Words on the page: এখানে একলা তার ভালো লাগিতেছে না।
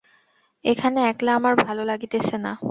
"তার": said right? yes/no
no